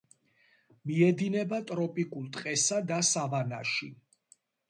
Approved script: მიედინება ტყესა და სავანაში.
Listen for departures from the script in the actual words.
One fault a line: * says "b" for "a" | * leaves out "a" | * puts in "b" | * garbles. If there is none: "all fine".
* puts in "ტროპიკულ"